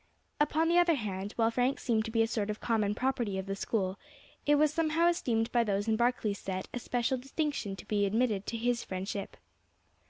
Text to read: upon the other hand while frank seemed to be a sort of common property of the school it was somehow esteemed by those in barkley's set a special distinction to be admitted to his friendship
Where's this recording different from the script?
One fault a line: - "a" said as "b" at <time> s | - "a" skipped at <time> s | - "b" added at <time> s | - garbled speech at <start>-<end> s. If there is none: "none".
none